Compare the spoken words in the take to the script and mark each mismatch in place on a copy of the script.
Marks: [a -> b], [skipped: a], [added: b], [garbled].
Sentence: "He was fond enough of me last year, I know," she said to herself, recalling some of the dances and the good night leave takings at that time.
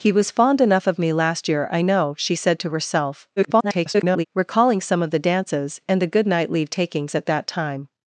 "He was fond enough of me last year, I know," she said to herself, [garbled] recalling some of the dances and the good night leave takings at that time.